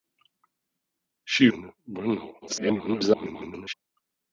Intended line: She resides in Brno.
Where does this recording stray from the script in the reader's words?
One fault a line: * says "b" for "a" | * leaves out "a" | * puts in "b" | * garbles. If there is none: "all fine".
* leaves out "resides"
* garbles